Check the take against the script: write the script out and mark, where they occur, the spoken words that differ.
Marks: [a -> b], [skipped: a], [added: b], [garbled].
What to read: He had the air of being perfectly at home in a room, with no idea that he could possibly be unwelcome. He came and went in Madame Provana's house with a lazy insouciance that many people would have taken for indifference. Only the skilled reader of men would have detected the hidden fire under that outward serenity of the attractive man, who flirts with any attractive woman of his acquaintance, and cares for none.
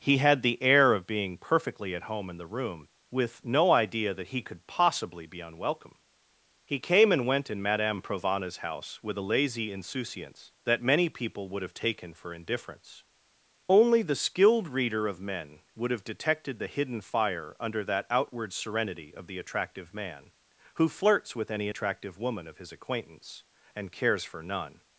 He had the air of being perfectly at home in [a -> the] room, with no idea that he could possibly be unwelcome. He came and went in Madame Provana's house with a lazy insouciance that many people would have taken for indifference. Only the skilled reader of men would have detected the hidden fire under that outward serenity of the attractive man, who flirts with any attractive woman of his acquaintance, and cares for none.